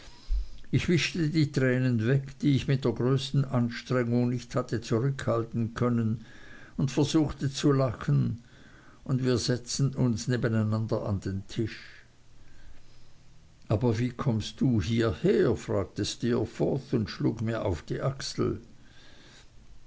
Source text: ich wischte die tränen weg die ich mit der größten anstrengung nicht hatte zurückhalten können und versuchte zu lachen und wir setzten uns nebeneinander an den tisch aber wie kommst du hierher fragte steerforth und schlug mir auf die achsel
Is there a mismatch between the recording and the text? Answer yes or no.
no